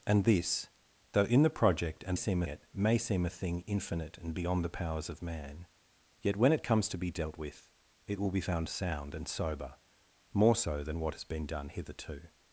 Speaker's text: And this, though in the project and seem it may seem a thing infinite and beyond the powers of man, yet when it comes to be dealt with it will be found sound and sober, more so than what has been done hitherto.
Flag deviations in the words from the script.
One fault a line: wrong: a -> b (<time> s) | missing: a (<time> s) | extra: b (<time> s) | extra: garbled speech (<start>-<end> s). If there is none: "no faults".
no faults